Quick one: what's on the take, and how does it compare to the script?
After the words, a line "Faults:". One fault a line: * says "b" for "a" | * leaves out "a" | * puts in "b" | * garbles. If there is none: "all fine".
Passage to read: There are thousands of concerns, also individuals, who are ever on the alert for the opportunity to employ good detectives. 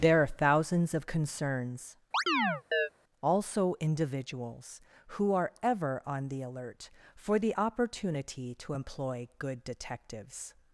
There are thousands of concerns, also individuals, who are ever on the alert for the opportunity to employ good detectives.
Faults:
all fine